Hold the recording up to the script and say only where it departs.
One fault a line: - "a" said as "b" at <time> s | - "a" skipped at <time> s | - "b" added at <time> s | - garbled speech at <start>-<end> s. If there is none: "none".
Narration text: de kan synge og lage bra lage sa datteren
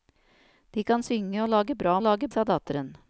none